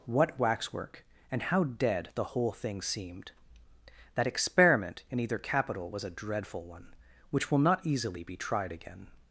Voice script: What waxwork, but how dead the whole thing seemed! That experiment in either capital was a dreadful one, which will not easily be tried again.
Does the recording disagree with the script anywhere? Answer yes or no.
yes